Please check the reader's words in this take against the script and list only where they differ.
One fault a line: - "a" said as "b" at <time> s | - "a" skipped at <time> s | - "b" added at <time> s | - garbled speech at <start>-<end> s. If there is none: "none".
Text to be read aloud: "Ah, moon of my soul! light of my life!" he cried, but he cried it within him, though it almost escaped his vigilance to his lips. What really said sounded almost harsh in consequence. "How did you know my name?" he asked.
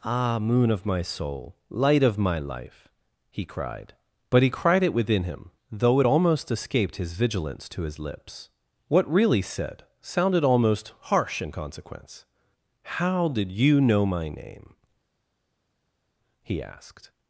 none